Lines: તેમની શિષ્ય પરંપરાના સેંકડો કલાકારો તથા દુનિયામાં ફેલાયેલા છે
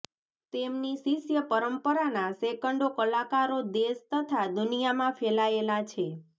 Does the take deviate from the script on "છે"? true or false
false